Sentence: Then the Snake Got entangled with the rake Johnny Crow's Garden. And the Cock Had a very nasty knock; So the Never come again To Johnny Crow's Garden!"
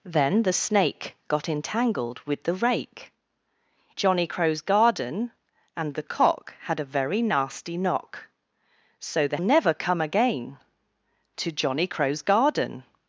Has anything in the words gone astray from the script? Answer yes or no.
no